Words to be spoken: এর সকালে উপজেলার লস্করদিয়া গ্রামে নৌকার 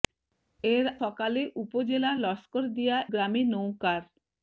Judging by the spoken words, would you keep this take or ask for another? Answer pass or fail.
pass